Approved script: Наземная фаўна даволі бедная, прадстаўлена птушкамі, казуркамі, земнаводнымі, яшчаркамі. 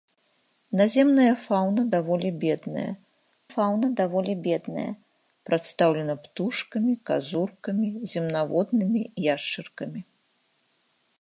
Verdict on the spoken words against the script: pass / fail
fail